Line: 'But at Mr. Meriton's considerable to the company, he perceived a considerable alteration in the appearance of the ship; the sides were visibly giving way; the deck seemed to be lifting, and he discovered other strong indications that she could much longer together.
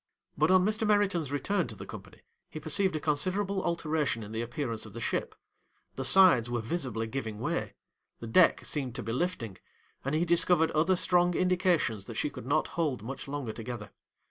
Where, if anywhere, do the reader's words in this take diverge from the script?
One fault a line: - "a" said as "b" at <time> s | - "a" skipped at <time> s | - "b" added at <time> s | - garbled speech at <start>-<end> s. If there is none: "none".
- "at" said as "on" at 0.5 s
- "considerable" said as "return" at 1.3 s
- "not hold" added at 12.5 s